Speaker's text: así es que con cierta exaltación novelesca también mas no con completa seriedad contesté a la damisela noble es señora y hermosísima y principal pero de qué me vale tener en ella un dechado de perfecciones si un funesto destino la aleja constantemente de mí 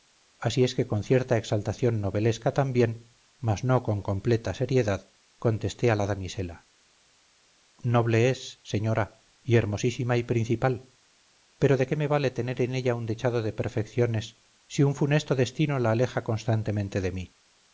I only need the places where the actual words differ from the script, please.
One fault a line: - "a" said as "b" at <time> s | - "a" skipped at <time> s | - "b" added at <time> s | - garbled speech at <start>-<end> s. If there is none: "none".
none